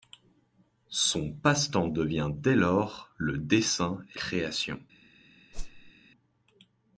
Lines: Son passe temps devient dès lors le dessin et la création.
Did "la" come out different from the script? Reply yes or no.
yes